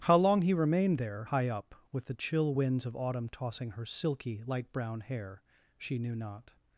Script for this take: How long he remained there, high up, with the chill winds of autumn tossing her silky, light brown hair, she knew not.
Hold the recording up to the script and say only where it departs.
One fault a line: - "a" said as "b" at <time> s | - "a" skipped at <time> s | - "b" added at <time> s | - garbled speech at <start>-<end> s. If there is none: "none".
none